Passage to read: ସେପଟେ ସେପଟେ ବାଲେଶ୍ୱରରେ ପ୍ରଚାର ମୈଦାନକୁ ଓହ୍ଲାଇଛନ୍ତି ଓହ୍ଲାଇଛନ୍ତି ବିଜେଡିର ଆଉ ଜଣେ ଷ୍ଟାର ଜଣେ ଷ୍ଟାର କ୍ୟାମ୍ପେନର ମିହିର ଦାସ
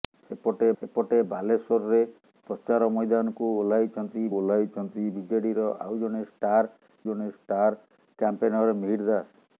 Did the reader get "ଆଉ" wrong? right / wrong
right